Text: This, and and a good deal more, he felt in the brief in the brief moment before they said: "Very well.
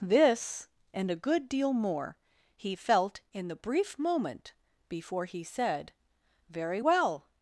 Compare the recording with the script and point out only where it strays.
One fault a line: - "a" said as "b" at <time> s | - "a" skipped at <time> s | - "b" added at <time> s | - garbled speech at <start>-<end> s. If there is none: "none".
- "and" skipped at 1.1 s
- "in the brief" skipped at 4.0 s
- "they" said as "he" at 5.3 s